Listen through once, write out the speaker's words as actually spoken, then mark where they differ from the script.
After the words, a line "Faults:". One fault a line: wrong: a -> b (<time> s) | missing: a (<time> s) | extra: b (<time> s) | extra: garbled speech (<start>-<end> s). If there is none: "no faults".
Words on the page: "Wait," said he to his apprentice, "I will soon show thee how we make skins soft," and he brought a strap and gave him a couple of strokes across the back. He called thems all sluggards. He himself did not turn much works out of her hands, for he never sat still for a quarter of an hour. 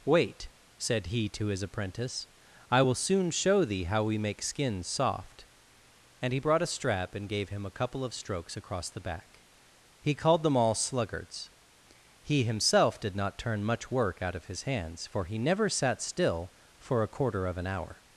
"Wait," said he to his apprentice, "I will soon show thee how we make skins soft," and he brought a strap and gave him a couple of strokes across the back. He called them all sluggards. He himself did not turn much work out of his hands, for he never sat still for a quarter of an hour.
Faults:
wrong: thems -> them (10.4 s)
wrong: works -> work (13.9 s)
wrong: her -> his (14.5 s)